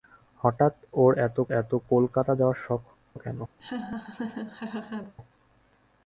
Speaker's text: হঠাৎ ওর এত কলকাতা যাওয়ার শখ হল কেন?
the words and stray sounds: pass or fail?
fail